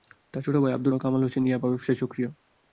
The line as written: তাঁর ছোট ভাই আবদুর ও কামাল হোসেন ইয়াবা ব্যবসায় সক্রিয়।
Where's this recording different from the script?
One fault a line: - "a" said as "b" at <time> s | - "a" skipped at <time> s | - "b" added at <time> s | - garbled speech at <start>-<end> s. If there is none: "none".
none